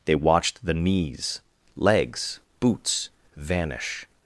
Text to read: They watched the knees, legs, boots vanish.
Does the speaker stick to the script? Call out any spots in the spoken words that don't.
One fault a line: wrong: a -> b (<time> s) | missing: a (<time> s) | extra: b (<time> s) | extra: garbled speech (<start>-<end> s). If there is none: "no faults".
no faults